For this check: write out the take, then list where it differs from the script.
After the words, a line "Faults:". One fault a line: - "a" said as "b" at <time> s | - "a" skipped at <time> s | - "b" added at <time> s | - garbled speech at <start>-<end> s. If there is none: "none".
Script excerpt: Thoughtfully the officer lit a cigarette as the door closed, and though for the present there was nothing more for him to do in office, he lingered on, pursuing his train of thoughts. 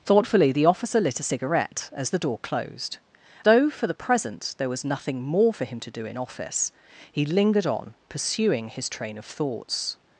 Thoughtfully the officer lit a cigarette as the door closed, though for the present there was nothing more for him to do in office, he lingered on, pursuing his train of thoughts.
Faults:
- "and" skipped at 3.0 s